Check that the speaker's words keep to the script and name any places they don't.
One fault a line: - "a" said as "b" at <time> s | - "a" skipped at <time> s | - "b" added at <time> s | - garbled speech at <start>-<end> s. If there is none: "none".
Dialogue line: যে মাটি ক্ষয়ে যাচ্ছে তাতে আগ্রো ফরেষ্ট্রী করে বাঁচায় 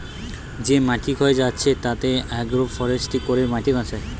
- "মাটি" added at 3.5 s